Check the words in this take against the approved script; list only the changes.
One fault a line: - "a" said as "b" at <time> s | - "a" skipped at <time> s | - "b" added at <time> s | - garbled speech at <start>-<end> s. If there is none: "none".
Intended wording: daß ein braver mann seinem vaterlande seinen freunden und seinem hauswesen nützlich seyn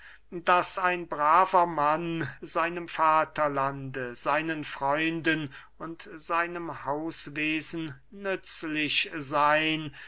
none